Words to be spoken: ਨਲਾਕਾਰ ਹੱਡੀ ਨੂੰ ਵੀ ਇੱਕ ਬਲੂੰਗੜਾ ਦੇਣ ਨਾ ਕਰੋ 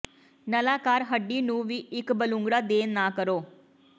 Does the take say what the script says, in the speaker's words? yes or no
yes